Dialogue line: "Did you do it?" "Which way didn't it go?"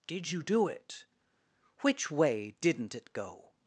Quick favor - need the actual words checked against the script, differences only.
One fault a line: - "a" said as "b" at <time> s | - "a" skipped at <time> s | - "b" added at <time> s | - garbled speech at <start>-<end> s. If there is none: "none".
none